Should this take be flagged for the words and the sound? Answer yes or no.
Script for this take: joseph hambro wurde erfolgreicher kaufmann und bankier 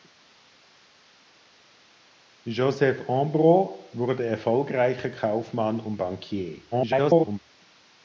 yes